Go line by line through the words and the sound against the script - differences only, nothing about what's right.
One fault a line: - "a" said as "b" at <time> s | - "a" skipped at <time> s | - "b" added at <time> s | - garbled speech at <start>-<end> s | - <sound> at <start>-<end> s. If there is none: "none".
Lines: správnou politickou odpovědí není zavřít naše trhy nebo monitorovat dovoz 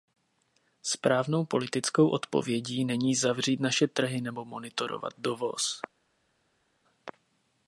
none